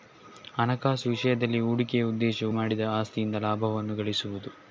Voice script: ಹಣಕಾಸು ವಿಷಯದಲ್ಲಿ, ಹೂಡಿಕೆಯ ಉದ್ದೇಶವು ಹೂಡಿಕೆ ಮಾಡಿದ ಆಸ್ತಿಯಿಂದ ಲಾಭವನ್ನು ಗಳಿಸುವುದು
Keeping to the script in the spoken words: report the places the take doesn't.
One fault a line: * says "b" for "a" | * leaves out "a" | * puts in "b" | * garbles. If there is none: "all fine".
* leaves out "ಹೂಡಿಕೆ"